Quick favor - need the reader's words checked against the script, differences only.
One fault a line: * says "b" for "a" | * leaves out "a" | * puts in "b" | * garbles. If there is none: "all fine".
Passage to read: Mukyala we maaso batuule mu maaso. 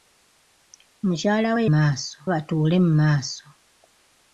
all fine